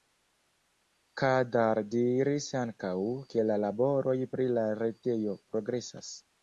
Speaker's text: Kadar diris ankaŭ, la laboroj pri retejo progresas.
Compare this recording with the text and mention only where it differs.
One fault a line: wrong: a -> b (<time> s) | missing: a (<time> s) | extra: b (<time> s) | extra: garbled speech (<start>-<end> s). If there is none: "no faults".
extra: ke (3.4 s)
extra: la (4.6 s)